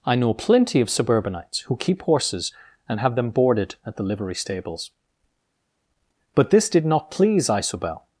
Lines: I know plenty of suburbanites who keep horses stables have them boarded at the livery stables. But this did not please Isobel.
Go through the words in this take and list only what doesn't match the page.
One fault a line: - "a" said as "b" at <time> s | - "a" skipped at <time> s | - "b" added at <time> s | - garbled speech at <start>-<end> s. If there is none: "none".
- "stables" said as "and" at 2.9 s